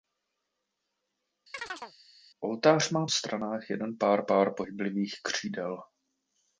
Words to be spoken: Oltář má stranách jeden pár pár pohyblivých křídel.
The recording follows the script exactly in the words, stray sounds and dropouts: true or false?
false